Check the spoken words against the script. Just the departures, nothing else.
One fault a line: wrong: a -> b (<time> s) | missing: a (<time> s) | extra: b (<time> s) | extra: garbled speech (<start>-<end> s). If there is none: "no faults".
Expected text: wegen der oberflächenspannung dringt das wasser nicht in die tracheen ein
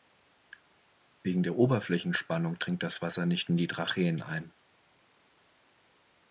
no faults